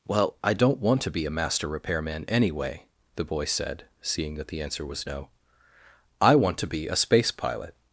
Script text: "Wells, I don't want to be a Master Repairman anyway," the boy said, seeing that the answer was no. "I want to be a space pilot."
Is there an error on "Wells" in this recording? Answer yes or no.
yes